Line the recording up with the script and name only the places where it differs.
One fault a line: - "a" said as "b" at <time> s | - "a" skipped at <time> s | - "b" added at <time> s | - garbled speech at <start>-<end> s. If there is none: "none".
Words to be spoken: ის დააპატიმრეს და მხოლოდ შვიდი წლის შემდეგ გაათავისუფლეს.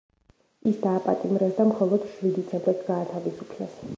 - "წლის" skipped at 2.5 s